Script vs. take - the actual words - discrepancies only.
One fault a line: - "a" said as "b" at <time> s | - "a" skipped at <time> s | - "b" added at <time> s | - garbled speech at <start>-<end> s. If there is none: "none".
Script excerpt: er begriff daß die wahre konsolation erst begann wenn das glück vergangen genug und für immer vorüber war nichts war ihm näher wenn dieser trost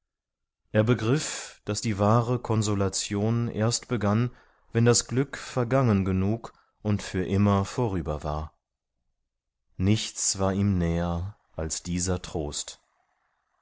- "wenn" said as "als" at 11.6 s